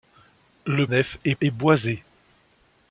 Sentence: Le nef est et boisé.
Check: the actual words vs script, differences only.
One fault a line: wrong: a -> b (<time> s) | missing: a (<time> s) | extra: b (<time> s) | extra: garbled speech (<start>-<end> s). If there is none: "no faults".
no faults